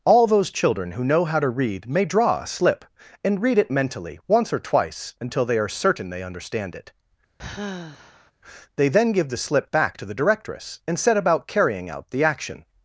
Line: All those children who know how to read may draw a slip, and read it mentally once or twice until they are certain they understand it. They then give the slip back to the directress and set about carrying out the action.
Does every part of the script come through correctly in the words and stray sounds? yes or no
no